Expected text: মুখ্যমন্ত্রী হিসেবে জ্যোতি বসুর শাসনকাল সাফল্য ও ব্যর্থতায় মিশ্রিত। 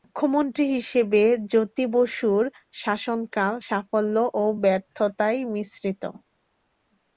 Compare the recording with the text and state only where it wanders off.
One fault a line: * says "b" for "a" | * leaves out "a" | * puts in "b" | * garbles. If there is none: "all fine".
all fine